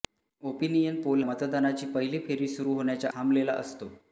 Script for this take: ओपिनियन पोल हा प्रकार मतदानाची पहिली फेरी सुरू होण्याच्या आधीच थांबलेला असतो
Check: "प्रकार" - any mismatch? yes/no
yes